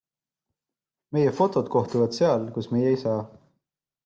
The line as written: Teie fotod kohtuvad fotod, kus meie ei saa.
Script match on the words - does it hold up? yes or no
no